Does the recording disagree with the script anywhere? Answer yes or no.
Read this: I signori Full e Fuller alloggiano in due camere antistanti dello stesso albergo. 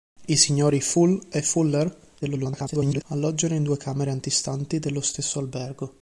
yes